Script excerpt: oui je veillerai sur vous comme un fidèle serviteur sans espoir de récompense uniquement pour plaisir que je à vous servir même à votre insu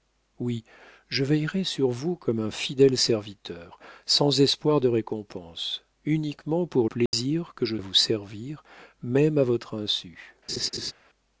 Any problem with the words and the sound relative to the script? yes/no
yes